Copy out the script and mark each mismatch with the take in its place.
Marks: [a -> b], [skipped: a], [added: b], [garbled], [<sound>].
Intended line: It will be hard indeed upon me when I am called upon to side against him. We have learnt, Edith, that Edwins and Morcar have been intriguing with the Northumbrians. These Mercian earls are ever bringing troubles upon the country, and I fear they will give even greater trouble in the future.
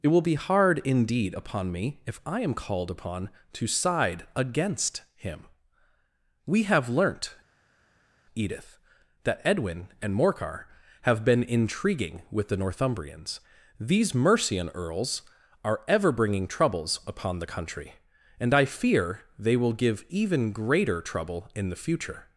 It will be hard indeed upon me [when -> if] I am called upon to side against him. We have learnt, Edith, that [Edwins -> Edwin] and Morcar have been intriguing with the Northumbrians. These Mercian earls are ever bringing troubles upon the country, and I fear they will give even greater trouble in the future.